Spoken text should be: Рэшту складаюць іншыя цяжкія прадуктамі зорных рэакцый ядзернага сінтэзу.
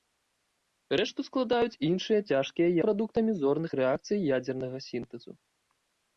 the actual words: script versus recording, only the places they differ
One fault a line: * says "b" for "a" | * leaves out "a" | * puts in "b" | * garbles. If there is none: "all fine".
all fine